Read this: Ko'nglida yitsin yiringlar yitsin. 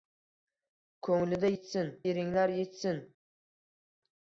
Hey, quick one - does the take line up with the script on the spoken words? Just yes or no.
yes